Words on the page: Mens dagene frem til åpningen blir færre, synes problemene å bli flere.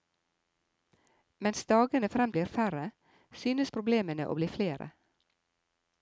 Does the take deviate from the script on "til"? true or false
true